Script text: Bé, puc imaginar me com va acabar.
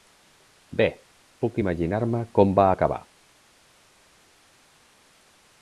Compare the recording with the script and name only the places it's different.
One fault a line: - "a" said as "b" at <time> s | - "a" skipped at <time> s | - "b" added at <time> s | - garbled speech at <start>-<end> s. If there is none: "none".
none